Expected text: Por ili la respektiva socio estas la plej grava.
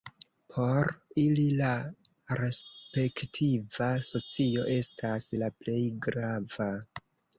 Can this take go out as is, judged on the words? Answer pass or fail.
pass